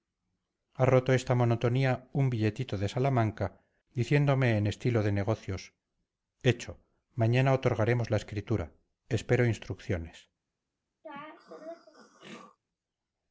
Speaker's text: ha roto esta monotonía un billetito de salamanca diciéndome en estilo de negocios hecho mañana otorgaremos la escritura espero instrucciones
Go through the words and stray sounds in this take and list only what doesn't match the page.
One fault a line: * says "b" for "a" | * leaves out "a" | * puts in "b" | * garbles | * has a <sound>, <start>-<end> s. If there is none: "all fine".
* has a throat clearing, 11.0-12.6 s